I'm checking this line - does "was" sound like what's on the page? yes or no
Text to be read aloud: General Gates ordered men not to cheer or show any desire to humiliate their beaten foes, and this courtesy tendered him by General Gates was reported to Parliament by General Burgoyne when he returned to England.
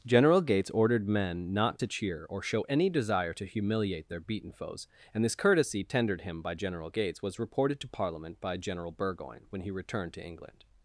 yes